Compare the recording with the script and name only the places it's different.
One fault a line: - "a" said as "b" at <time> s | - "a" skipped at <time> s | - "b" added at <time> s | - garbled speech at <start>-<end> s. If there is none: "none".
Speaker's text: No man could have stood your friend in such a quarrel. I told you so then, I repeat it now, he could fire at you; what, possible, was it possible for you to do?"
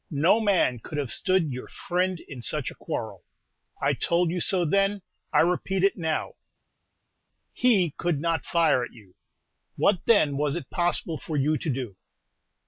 - "not" added at 8.2 s
- "possible" said as "then" at 10.0 s